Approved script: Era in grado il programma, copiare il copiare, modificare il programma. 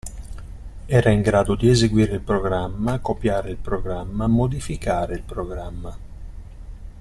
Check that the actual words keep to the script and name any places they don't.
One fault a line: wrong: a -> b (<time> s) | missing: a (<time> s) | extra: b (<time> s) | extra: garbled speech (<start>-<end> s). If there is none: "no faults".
extra: di eseguire (1.5 s)
wrong: copiare -> programma (3.6 s)